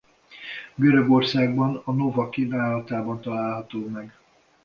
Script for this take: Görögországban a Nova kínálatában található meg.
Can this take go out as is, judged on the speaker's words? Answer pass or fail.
pass